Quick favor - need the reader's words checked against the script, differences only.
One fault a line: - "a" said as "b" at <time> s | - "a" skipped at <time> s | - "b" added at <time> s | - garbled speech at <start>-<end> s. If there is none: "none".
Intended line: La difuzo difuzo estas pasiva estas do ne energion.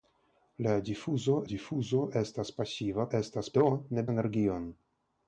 none